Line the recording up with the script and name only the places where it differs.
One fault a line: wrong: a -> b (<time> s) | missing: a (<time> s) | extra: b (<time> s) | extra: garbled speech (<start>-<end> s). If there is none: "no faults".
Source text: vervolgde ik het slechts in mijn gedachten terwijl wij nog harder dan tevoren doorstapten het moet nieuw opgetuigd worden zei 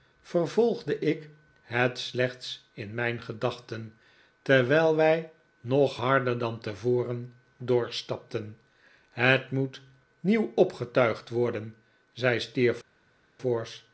no faults